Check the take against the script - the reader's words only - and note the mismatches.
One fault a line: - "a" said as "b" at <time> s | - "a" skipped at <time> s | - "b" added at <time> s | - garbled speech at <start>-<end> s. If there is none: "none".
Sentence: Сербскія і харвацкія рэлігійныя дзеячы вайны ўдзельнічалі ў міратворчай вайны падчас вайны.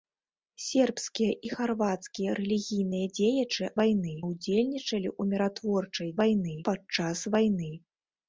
none